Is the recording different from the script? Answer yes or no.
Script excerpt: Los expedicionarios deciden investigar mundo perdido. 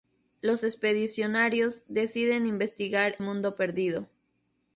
no